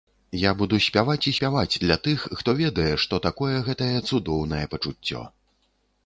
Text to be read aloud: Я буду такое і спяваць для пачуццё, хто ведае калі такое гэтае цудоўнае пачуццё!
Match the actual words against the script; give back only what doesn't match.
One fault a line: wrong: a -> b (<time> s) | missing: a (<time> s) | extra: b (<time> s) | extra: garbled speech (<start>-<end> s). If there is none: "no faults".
wrong: такое -> спяваць (0.8 s)
wrong: пачуццё -> тых (2.1 s)
wrong: калі -> што (3.0 s)